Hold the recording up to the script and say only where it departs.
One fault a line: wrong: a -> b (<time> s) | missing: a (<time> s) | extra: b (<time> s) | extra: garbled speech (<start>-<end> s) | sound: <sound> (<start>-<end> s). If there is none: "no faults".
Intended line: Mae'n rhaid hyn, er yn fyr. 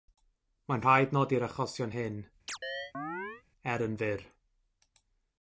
extra: nodi'r achosion (1.2 s)
sound: chirp (2.5-3.4 s)